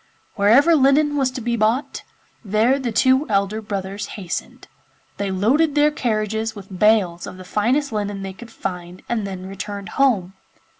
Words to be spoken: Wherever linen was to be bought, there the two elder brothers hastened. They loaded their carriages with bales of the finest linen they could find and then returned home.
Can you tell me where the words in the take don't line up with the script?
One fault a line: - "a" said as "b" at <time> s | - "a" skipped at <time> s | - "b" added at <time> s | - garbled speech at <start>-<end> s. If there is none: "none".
none